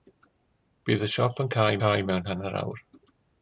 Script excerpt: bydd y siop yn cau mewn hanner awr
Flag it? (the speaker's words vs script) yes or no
yes